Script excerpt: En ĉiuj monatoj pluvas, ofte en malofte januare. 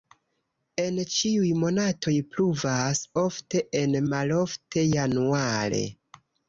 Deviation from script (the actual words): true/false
false